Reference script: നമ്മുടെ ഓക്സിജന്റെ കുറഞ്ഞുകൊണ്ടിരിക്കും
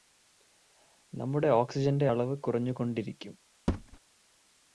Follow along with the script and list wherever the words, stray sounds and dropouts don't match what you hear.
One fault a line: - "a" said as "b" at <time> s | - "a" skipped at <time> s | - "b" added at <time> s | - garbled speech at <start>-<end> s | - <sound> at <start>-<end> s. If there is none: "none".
- "അളവ്" added at 2.1 s
- thud at 3.7-4.0 s